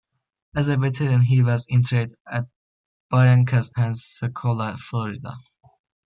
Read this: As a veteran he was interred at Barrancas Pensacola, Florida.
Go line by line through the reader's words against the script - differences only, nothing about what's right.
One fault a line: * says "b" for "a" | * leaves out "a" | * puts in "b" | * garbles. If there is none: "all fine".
all fine